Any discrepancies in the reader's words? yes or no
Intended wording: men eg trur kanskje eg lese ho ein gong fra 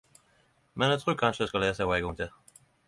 yes